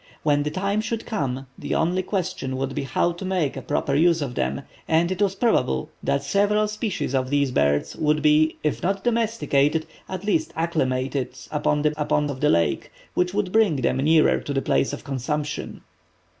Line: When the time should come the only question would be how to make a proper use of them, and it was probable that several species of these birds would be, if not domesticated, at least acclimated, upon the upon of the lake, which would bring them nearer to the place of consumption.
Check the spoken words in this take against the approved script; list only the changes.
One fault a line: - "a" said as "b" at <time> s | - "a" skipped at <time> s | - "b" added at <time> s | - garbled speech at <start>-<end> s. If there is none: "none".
none